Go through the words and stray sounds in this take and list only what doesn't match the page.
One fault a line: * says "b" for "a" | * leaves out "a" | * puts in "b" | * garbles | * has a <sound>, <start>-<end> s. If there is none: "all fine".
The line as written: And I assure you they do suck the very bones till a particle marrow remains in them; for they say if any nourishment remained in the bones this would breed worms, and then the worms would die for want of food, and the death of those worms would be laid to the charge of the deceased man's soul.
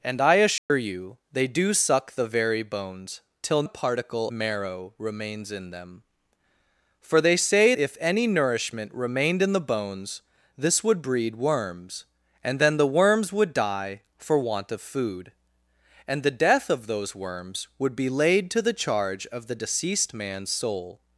* has a dropout, 0.6-0.7 s